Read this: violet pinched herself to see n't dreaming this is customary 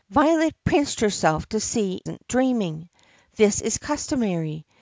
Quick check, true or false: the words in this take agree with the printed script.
true